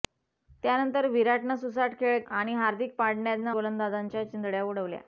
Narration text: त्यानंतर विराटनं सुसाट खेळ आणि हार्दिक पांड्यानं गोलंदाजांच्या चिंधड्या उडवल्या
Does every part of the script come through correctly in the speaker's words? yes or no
yes